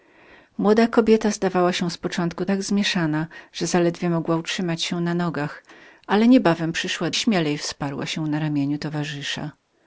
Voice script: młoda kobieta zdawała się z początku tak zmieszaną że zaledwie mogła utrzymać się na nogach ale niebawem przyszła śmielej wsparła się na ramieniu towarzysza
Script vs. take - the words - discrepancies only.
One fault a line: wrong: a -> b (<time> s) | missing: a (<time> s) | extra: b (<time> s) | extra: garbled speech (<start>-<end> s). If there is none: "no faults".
no faults